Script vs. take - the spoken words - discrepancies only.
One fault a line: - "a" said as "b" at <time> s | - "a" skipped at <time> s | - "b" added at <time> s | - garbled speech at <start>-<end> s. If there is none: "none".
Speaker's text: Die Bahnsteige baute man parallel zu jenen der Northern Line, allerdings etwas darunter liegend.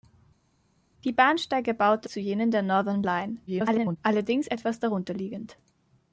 - "man parallel" skipped at 2.1 s
- garbled speech at 3.5-4.0 s